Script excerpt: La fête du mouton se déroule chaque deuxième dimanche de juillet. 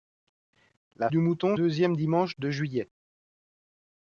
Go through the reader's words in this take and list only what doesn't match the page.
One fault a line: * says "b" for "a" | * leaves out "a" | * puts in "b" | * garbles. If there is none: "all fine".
* leaves out "fête"
* leaves out "se déroule chaque"